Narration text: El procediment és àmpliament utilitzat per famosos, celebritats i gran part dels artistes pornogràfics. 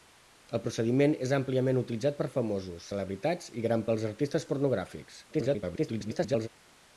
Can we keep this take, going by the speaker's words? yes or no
no